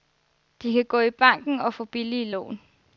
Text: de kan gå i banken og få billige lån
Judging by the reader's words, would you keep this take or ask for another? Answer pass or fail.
pass